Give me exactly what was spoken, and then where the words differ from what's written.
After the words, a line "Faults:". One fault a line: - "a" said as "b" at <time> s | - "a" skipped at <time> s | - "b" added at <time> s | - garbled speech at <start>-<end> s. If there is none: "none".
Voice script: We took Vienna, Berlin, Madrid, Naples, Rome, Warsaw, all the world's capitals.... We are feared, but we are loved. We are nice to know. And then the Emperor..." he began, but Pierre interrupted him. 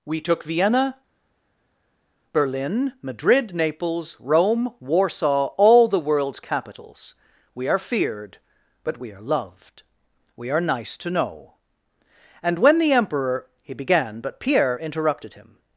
We took Vienna, Berlin, Madrid, Naples, Rome, Warsaw, all the world's capitals.... We are feared, but we are loved. We are nice to know. And when the Emperor..." he began, but Pierre interrupted him.
Faults:
- "then" said as "when" at 12.6 s